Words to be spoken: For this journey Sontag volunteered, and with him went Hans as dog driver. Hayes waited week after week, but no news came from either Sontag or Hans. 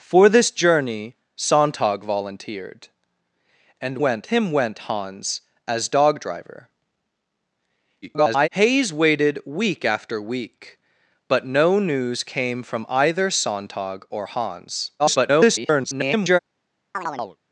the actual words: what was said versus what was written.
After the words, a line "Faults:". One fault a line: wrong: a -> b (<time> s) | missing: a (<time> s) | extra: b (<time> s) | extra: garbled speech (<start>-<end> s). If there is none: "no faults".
For this journey Sontag volunteered, and went him went Hans as dog driver. [garbled] Hayes waited week after week, but no news came from either Sontag or Hans. [garbled]
Faults:
wrong: with -> went (4.0 s)
extra: garbled speech (8.0-8.5 s)
extra: garbled speech (15.0-16.4 s)